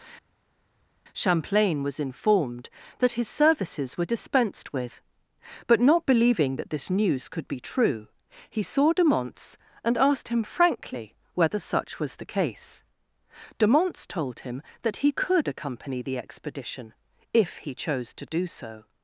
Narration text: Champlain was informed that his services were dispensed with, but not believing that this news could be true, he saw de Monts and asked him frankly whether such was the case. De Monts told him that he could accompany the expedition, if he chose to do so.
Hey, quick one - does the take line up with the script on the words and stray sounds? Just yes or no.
yes